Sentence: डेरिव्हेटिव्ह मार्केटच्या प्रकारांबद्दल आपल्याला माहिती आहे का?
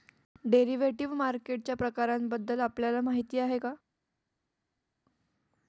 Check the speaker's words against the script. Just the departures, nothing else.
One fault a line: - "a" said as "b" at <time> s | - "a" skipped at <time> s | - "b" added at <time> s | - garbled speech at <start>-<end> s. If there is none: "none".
none